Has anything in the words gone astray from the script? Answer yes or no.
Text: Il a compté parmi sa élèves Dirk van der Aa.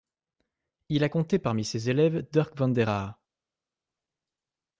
yes